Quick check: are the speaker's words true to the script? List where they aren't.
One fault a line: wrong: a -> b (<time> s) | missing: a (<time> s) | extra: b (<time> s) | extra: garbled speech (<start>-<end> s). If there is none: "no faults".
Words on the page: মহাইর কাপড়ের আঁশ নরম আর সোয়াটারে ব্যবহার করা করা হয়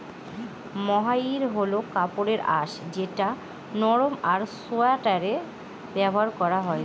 extra: হল (1.6 s)
extra: যেটা (2.9 s)
missing: করা (6.6 s)